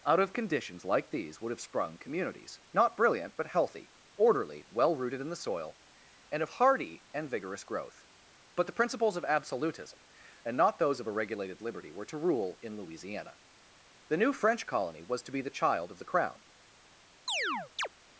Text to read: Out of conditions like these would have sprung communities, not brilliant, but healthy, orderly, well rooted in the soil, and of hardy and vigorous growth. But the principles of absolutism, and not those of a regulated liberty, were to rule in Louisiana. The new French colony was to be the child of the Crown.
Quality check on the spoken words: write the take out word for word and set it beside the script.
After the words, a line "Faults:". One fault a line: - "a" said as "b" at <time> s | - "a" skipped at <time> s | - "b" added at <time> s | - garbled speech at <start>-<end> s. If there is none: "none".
Out of conditions like these would have sprung communities, not brilliant, but healthy, orderly, well rooted in the soil, and of hardy and vigorous growth. But the principles of absolutism, and not those of a regulated liberty, were to rule in Louisiana. The new French colony was to be the child of the Crown.
Faults:
none